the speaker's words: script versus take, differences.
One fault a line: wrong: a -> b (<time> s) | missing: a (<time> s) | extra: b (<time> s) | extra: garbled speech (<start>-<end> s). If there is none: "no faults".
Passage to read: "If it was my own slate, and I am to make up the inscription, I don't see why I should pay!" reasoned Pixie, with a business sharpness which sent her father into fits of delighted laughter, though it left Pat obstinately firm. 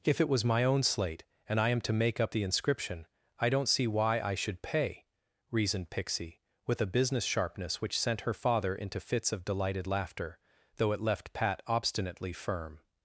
no faults